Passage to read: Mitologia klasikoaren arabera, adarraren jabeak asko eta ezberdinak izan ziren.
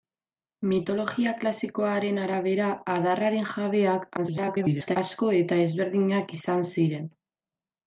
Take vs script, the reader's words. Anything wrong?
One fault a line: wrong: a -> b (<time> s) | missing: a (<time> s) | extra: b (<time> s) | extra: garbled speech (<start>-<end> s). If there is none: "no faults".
extra: garbled speech (4.2-5.0 s)